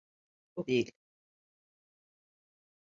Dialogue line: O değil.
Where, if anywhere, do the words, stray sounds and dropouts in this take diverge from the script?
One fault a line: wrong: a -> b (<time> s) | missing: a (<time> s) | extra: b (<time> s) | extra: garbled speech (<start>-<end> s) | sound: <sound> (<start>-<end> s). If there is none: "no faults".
no faults